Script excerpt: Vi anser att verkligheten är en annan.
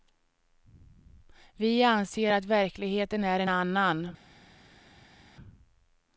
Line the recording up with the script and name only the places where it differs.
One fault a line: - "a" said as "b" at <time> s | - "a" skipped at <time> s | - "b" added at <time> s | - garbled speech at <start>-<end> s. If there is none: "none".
none